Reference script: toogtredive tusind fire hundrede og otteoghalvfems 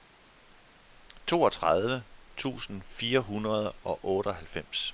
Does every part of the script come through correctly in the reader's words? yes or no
yes